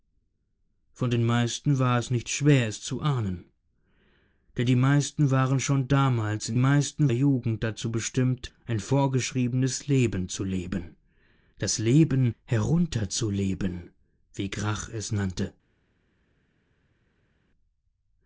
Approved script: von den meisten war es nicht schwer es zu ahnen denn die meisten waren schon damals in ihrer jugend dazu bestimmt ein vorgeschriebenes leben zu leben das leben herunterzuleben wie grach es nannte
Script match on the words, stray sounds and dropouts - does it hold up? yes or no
no